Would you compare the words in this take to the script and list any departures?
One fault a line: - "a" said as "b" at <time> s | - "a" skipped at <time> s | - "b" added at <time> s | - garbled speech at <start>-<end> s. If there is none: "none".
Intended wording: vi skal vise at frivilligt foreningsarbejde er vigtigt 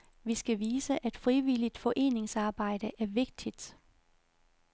none